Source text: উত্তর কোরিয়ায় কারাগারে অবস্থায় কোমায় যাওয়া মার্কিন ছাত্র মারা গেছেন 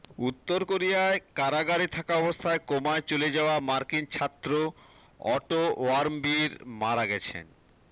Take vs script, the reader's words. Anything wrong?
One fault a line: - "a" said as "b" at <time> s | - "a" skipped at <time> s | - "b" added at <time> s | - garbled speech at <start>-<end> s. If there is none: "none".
- "থাকা" added at 2.0 s
- "চলে" added at 3.1 s
- "অটো ওয়ার্মবিয়ের" added at 5.3 s